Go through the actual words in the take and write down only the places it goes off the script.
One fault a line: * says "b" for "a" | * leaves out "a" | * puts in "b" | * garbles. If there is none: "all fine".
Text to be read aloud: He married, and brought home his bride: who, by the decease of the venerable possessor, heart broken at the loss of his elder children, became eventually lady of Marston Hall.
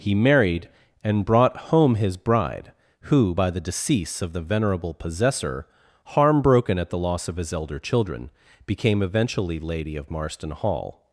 * says "harm" for "heart"